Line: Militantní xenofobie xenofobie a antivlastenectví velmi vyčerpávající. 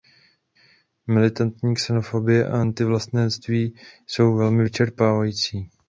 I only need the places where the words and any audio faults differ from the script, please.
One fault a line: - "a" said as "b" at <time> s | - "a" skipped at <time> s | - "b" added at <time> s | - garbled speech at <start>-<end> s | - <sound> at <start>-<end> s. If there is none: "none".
- "xenofobie" skipped at 2.5 s
- "jsou" added at 4.1 s